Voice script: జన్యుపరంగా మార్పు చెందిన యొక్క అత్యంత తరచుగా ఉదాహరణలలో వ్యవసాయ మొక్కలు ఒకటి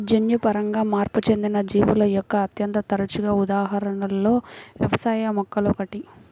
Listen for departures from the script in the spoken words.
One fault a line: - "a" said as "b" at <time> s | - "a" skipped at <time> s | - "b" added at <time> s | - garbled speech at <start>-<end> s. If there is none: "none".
- "జీవుల" added at 1.7 s